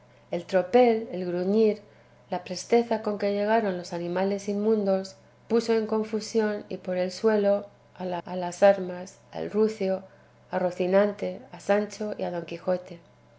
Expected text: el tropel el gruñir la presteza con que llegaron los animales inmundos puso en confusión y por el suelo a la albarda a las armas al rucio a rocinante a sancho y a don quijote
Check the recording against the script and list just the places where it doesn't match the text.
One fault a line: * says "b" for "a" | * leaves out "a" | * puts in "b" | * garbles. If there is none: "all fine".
* leaves out "albarda"